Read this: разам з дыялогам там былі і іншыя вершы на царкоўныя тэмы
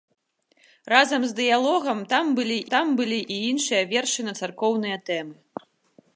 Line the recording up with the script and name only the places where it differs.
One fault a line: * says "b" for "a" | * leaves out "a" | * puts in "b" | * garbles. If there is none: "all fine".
* puts in "там былі"